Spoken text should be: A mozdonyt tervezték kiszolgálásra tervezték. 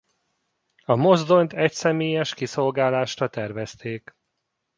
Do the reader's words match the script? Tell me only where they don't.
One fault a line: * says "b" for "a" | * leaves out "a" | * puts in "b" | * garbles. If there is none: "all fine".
* says "egyszemélyes" for "tervezték"